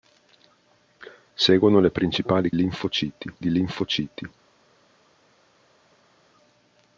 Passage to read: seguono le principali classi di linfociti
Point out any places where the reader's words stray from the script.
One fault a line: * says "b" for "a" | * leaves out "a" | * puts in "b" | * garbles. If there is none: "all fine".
* says "linfociti" for "classi"